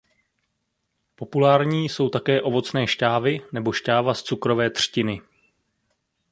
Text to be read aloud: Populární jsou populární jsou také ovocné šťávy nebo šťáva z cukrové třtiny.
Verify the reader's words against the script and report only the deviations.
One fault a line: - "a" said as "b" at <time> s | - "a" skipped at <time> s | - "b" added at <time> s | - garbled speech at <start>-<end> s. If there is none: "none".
- "populární jsou" skipped at 2.1 s